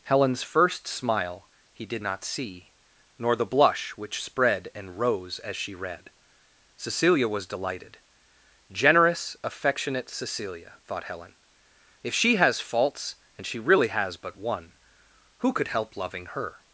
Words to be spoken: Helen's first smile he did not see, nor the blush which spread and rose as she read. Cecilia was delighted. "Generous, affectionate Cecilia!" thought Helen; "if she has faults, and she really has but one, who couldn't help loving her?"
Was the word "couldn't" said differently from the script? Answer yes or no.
yes